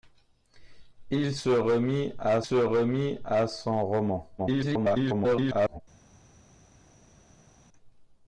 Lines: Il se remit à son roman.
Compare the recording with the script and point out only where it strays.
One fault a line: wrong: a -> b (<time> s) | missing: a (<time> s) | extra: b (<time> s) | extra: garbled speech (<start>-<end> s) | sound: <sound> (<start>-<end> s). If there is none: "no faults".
extra: se remit à (2.4 s)
extra: garbled speech (4.4-5.8 s)